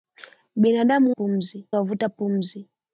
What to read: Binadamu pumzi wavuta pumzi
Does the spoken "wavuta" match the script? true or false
true